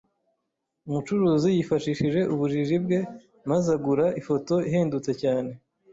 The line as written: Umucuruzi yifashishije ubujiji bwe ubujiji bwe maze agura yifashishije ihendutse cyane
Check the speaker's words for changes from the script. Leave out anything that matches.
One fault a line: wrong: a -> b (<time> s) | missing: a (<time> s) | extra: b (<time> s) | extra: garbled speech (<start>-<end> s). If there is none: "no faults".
missing: ubujiji bwe (3.0 s)
wrong: yifashishije -> ifoto (4.2 s)